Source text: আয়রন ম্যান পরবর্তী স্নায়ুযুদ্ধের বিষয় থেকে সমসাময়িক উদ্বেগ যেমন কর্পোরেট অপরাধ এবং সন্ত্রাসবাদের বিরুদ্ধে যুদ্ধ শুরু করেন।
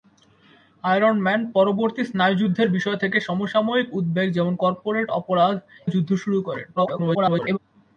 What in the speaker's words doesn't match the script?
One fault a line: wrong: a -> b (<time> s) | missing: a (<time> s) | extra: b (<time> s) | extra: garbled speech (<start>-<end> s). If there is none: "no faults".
missing: এবং সন্ত্রাসবাদের বিরুদ্ধে (5.5 s)
extra: garbled speech (6.8-7.6 s)